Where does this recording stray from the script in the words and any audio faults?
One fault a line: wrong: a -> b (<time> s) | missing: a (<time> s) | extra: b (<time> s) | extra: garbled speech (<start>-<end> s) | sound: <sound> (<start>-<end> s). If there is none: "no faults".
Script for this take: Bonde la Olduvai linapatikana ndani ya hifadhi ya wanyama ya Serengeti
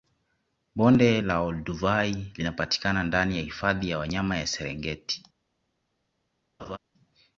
sound: laugh (6.6-6.8 s)